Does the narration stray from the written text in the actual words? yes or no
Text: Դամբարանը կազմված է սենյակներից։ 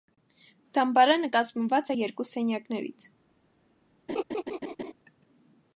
yes